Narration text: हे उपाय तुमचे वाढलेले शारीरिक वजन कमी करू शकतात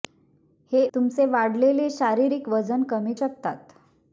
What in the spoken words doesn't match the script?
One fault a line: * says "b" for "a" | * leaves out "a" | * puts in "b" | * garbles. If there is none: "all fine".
* leaves out "उपाय"
* leaves out "करू"